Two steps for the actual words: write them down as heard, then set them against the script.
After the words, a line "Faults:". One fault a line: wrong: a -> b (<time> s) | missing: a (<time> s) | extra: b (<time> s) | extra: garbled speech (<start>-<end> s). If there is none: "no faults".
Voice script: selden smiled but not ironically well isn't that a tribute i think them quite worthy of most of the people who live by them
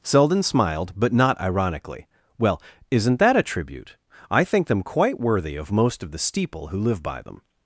selden smiled but not ironically well isn't that a tribute i think them quite worthy of most of the steeple who live by them
Faults:
wrong: people -> steeple (6.2 s)